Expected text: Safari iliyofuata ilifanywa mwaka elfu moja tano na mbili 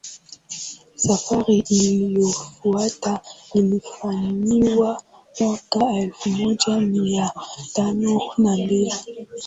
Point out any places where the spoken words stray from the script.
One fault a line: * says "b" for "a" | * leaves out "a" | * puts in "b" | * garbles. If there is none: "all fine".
* puts in "mia"